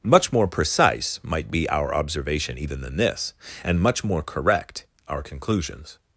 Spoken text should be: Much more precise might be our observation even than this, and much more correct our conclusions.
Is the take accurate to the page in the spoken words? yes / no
yes